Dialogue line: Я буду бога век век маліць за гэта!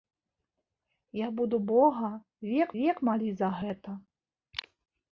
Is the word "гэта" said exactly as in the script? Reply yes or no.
yes